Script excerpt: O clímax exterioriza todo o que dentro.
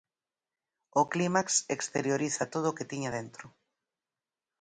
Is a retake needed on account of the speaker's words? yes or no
yes